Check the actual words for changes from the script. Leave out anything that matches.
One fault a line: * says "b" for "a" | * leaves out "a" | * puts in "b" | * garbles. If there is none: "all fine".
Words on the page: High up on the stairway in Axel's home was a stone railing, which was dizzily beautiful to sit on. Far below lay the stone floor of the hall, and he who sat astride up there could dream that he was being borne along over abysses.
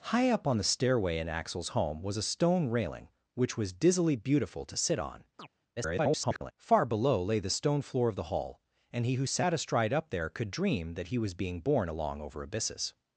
* garbles